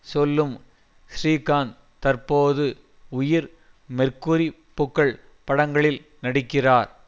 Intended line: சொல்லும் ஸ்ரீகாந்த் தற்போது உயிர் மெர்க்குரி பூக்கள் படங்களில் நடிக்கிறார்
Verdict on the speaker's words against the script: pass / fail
pass